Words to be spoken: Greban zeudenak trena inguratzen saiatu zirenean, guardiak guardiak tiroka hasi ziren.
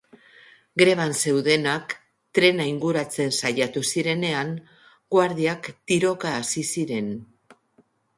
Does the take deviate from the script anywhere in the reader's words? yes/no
yes